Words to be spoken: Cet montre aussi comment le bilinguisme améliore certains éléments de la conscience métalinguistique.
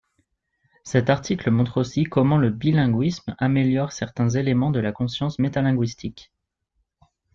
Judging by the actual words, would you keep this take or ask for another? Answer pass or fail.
fail